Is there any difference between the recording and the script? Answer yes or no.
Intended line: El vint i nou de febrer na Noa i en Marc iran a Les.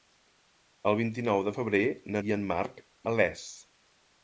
yes